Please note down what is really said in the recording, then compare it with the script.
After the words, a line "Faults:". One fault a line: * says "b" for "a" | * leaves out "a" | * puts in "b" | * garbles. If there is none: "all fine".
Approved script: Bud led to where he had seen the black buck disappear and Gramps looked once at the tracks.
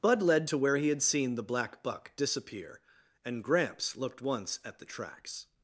Bud led to where he had seen the black buck disappear and Gramps looked once at the tracks.
Faults:
all fine